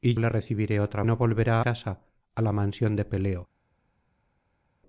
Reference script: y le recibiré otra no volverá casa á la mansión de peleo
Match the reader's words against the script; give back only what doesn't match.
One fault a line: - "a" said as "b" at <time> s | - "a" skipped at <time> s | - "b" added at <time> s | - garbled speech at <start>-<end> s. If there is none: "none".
none